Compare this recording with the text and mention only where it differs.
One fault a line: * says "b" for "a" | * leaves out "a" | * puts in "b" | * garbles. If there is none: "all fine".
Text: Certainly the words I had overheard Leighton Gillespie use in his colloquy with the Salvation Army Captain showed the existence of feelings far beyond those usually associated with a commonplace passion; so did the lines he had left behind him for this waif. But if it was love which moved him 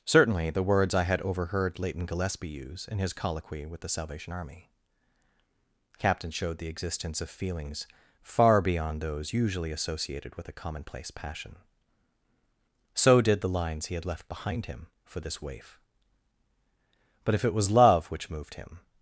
all fine